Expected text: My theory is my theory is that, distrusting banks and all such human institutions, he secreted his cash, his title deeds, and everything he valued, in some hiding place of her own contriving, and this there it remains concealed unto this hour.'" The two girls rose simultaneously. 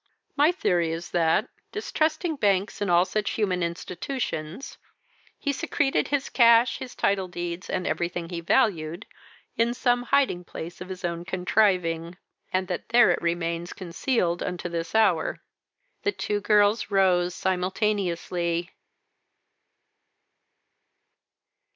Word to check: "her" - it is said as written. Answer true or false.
false